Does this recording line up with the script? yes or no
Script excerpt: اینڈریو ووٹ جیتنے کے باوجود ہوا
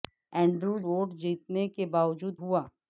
yes